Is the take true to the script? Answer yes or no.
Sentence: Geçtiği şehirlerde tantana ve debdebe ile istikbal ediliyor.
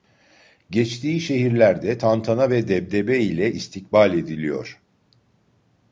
yes